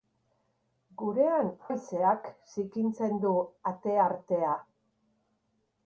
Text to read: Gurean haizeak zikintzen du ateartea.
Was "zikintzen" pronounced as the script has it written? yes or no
yes